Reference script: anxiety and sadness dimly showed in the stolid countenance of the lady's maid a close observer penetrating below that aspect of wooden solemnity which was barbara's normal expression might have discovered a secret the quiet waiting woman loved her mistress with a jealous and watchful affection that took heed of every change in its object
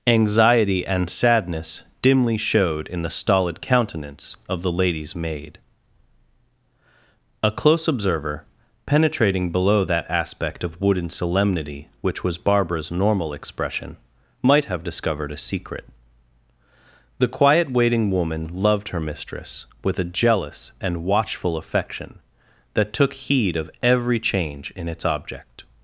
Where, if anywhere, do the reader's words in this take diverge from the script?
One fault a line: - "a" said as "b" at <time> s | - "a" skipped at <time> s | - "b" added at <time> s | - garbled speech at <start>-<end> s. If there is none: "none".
none